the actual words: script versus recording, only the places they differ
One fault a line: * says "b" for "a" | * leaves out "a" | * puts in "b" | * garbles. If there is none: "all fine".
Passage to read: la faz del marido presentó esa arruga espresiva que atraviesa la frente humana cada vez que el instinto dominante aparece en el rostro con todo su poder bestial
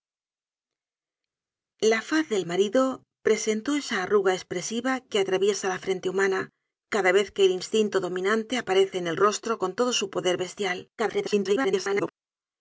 * garbles